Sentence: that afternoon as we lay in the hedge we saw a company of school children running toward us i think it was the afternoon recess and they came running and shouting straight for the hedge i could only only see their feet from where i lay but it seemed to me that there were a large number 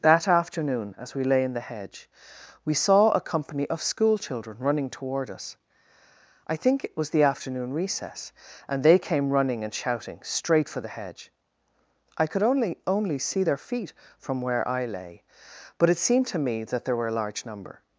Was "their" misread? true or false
false